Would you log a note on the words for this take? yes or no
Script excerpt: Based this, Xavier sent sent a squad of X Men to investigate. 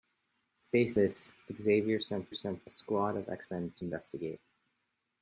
no